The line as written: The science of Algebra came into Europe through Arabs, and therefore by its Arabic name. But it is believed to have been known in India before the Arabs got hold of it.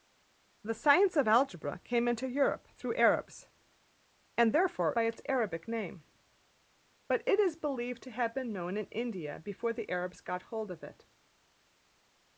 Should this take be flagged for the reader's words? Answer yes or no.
no